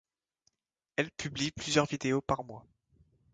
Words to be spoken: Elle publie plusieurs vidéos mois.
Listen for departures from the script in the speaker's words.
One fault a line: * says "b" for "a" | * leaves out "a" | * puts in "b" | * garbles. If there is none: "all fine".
* puts in "par"